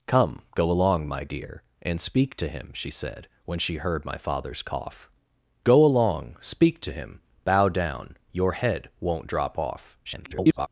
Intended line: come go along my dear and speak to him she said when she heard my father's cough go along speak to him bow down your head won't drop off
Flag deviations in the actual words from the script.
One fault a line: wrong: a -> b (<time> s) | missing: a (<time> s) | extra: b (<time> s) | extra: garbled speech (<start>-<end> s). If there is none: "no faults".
extra: garbled speech (10.0-10.7 s)